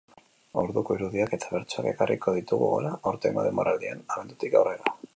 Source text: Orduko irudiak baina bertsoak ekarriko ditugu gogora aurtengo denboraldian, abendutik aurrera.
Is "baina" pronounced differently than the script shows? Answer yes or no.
yes